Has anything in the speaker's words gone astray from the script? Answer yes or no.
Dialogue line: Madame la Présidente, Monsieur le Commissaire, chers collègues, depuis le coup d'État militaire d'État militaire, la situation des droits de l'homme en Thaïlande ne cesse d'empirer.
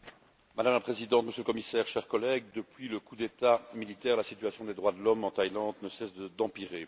yes